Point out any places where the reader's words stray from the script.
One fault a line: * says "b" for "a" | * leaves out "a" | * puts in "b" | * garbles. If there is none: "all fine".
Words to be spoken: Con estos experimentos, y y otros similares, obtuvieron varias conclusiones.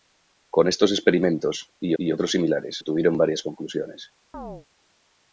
all fine